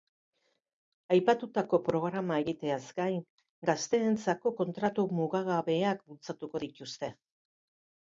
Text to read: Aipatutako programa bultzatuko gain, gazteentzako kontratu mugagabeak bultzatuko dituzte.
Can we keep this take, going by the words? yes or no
no